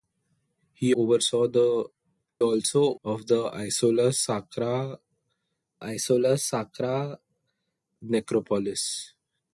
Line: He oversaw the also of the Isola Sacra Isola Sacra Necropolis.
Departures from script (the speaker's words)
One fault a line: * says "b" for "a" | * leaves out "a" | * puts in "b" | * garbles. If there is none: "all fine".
all fine